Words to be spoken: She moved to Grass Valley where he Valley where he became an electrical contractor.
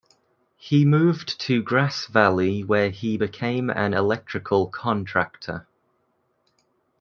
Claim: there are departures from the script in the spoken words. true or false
true